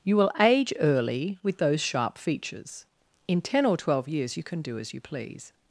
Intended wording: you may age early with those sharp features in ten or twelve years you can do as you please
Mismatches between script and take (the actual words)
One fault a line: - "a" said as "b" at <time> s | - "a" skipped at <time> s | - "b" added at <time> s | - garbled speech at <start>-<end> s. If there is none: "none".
- "may" said as "will" at 0.2 s